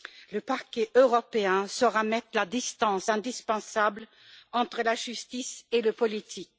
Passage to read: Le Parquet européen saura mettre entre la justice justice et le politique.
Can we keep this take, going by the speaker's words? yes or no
no